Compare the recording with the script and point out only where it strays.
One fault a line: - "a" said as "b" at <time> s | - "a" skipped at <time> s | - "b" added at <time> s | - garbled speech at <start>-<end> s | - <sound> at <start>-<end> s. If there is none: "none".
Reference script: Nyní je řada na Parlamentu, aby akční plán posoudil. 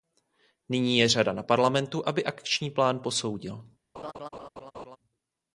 - laugh at 3.9-5.0 s